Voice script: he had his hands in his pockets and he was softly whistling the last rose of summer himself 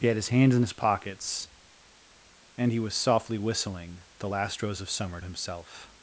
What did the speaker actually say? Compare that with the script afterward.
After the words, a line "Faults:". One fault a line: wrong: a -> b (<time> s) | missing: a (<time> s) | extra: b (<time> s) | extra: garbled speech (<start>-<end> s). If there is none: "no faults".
he had his hands in his pockets and he was softly whistling the last rose of summer himself
Faults:
no faults